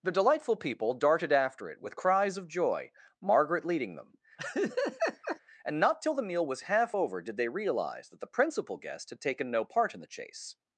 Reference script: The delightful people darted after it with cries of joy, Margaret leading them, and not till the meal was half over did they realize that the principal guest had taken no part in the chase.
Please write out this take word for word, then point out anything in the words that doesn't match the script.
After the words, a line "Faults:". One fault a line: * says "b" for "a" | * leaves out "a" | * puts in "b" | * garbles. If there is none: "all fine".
The delightful people darted after it with cries of joy, Margaret leading them, and not till the meal was half over did they realize that the principal guest had taken no part in the chase.
Faults:
all fine